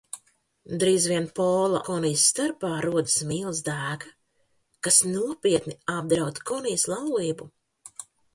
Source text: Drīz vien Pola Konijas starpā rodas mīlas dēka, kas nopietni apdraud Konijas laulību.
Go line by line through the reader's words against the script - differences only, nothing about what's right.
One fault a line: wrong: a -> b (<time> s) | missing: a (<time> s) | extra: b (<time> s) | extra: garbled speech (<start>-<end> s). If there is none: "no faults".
no faults